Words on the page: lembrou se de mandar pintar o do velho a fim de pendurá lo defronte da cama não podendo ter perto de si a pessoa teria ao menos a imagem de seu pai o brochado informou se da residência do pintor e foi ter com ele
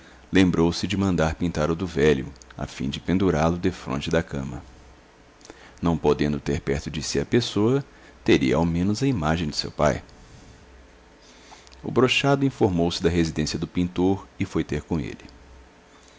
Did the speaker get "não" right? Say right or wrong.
right